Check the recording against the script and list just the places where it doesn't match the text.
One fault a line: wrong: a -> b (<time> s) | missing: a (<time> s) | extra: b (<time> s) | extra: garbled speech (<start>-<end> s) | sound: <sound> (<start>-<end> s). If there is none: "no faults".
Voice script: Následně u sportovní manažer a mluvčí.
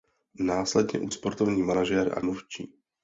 no faults